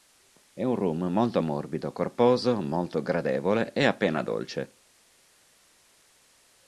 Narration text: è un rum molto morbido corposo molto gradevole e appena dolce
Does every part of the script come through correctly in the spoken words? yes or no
yes